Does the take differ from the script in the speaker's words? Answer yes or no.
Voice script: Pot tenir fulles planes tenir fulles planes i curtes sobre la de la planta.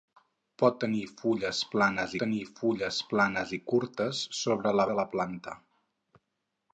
no